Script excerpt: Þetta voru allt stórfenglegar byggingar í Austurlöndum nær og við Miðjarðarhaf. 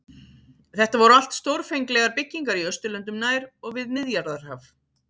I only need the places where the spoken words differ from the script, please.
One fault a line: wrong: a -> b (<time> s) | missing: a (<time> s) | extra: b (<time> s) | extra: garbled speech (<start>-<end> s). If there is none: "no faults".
no faults